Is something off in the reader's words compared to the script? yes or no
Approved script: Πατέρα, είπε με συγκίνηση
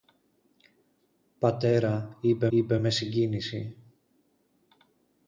yes